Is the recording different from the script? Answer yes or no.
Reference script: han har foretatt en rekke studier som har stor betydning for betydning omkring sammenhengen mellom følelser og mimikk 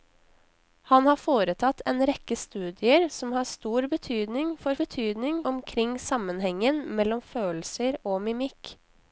no